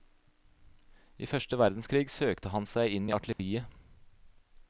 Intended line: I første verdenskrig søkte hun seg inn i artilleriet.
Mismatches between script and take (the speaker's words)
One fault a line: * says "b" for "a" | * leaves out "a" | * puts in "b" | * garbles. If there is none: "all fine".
* says "han" for "hun"